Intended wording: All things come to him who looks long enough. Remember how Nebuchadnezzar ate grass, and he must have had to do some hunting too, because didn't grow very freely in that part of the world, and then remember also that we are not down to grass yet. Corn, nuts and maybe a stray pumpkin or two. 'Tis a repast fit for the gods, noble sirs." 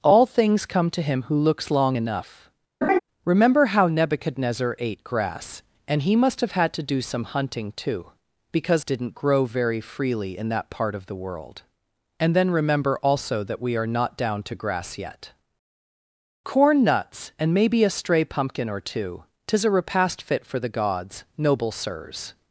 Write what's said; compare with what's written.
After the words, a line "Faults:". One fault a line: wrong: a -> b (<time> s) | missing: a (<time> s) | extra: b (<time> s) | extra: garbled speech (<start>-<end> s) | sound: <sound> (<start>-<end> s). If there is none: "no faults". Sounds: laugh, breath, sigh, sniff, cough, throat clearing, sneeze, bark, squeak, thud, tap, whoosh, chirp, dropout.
All things come to him who looks long enough. Remember how Nebuchadnezzar ate grass, and he must have had to do some hunting too, because didn't grow very freely in that part of the world, and then remember also that we are not down to grass yet. Corn, nuts and maybe a stray pumpkin or two. 'Tis a repast fit for the gods, noble sirs."
Faults:
sound: laugh (2.8-3.0 s)